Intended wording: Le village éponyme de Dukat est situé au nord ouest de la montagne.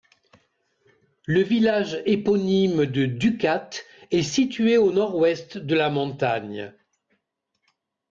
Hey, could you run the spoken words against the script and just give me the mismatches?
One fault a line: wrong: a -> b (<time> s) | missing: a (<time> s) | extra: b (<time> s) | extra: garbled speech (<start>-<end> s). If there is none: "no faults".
no faults